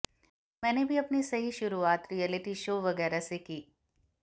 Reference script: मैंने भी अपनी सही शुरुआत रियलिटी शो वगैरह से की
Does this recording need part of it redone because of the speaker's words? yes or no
no